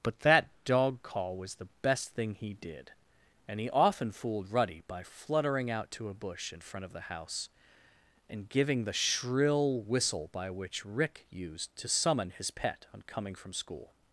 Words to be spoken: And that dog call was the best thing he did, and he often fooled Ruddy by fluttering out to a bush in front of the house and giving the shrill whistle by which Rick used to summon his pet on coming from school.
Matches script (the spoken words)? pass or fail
fail